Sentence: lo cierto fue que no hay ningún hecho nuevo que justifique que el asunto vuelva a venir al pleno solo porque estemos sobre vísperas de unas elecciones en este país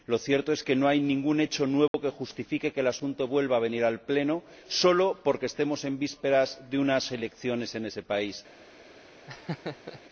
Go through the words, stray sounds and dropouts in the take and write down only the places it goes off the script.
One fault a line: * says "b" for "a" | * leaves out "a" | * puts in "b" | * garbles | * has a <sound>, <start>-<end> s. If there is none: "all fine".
* says "es" for "fue"
* has a dropout, 1.9-1.9 s
* says "en" for "sobre"
* says "ese" for "este"
* has a laugh, 9.3-10.0 s